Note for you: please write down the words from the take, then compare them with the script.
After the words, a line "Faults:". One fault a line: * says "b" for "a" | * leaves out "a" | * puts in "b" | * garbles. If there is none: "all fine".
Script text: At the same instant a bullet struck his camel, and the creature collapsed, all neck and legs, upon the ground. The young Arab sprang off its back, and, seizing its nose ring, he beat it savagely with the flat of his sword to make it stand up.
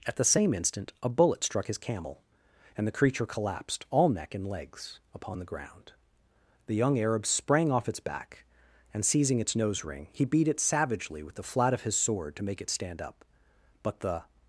At the same instant a bullet struck his camel, and the creature collapsed, all neck and legs, upon the ground. The young Arab sprang off its back, and, seizing its nose ring, he beat it savagely with the flat of his sword to make it stand up. But the
Faults:
* puts in "But the"